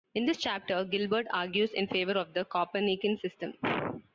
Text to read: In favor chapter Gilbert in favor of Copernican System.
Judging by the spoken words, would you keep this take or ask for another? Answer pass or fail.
fail